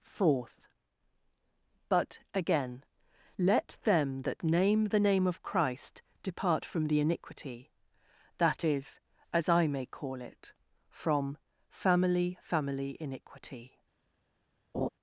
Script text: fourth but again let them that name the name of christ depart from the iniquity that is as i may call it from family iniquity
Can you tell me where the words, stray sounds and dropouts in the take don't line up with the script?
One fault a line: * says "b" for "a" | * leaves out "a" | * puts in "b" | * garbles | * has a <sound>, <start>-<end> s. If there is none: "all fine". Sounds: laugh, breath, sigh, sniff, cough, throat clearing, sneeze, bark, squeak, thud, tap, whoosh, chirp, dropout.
* puts in "family"
* has a laugh, 14.7-14.9 s